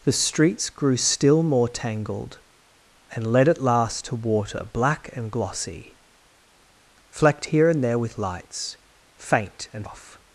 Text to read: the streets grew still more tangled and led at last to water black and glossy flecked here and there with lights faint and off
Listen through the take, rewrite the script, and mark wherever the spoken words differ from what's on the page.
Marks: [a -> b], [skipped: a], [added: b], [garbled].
the streets grew still more tangled and led at last to water black and glossy flecked here and there with lights faint and off